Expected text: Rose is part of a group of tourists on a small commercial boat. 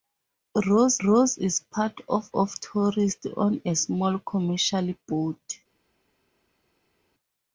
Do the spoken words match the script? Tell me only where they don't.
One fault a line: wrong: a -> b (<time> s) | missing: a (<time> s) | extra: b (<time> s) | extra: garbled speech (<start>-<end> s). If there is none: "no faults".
extra: rose (1.0 s)
missing: a group (2.3 s)